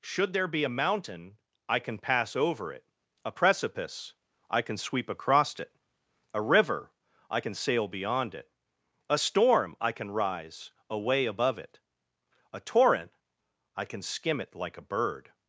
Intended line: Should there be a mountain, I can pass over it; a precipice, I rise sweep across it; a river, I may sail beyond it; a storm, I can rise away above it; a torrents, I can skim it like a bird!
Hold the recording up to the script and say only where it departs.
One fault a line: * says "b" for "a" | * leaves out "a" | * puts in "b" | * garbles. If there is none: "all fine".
* says "can" for "rise"
* says "can" for "may"
* says "torrent" for "torrents"